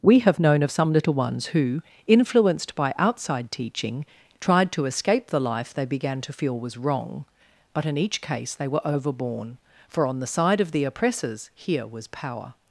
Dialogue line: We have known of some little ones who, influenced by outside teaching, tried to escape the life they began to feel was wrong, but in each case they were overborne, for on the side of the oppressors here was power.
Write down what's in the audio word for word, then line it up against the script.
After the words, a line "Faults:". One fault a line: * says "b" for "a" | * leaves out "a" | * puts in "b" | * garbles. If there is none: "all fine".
We have known of some little ones who, influenced by outside teaching, tried to escape the life they began to feel was wrong, but in each case they were overborne, for on the side of the oppressors here was power.
Faults:
all fine